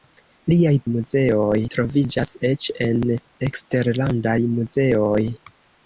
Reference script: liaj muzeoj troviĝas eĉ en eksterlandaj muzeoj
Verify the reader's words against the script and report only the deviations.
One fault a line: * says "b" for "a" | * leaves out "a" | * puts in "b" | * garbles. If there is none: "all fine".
all fine